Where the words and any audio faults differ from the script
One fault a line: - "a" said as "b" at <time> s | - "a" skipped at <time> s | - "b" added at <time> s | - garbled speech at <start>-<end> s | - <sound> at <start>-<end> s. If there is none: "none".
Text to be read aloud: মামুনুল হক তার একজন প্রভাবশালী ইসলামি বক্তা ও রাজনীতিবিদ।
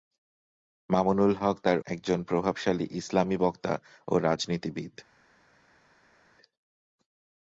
none